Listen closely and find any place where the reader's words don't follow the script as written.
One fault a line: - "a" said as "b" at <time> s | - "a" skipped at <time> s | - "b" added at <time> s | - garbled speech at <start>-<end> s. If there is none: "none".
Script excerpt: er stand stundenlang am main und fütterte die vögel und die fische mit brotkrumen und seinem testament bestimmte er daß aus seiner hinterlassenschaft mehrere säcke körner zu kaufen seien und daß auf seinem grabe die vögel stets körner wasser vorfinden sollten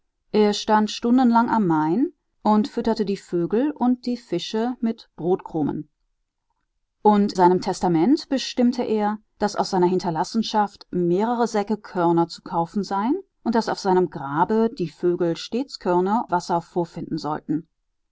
none